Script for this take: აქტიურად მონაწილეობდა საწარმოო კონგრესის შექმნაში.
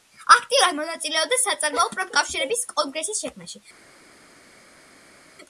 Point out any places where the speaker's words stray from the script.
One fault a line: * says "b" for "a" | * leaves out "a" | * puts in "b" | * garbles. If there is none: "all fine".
* puts in "პროფკავშირების"